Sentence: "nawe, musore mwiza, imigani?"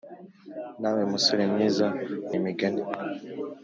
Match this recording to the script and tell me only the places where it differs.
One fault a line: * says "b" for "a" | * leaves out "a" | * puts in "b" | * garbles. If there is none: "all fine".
all fine